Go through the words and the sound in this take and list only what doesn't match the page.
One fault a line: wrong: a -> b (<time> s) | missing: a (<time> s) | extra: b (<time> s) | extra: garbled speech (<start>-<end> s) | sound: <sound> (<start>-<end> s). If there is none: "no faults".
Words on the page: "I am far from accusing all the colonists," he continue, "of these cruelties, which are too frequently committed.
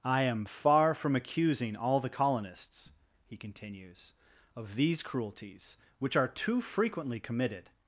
wrong: continue -> continues (3.3 s)